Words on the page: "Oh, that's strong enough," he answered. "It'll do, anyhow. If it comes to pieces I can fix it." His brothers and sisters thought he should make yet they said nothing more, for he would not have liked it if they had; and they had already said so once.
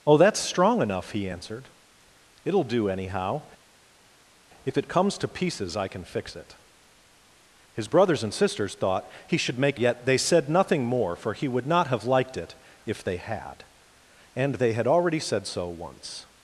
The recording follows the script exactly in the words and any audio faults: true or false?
true